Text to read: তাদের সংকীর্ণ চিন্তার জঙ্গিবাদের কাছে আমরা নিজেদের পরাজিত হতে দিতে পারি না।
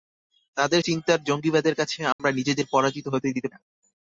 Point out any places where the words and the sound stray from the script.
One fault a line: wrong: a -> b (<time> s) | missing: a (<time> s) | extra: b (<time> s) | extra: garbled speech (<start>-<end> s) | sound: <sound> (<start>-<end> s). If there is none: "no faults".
missing: সংকীর্ণ (0.8 s)
sound: dropout (2.1-2.2 s)
missing: পারি (3.5 s)